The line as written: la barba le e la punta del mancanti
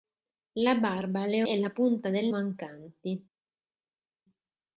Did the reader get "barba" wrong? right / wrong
right